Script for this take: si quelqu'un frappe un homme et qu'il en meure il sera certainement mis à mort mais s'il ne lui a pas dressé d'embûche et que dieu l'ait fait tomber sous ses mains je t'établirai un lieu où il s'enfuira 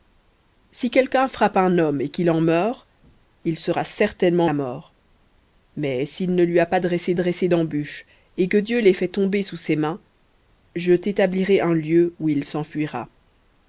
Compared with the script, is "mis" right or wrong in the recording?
wrong